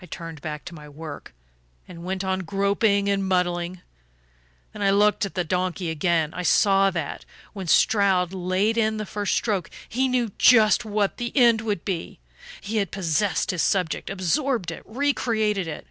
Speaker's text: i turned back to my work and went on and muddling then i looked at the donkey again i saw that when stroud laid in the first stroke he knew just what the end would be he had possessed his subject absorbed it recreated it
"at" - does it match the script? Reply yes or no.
yes